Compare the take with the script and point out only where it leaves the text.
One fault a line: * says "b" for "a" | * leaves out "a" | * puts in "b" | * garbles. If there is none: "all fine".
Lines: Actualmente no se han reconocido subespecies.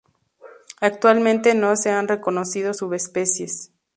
all fine